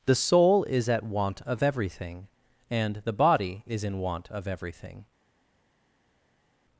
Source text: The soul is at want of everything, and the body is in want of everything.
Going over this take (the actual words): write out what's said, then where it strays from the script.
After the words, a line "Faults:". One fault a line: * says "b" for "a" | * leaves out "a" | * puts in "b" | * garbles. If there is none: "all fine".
The soul is at want of everything, and the body is in want of everything.
Faults:
all fine